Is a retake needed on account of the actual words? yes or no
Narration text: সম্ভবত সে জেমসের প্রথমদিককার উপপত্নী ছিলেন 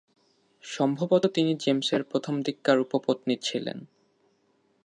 yes